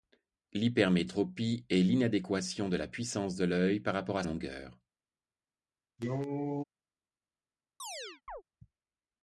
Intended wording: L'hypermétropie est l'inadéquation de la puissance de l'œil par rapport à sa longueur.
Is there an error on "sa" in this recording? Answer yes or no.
yes